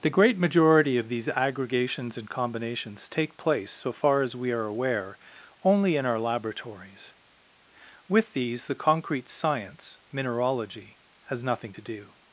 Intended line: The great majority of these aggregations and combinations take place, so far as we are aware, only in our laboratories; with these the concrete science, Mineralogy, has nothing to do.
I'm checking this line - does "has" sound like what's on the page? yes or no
yes